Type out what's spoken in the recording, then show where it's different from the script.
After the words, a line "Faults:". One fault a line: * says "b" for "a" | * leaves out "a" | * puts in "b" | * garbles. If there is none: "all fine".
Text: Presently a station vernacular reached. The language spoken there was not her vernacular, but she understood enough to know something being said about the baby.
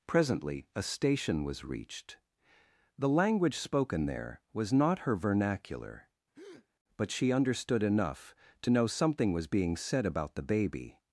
Presently a station was reached. The language spoken there was not her vernacular, but she understood enough to know something was being said about the baby.
Faults:
* says "was" for "vernacular"
* puts in "was"